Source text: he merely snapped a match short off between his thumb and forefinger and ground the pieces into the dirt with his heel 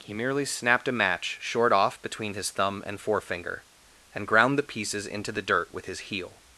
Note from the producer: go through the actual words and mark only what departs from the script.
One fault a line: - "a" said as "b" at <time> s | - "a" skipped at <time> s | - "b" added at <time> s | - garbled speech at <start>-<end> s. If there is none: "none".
none